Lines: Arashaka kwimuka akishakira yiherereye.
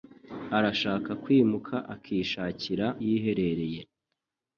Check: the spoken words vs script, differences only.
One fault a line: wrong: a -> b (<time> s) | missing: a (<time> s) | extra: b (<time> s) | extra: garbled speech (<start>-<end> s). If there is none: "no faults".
no faults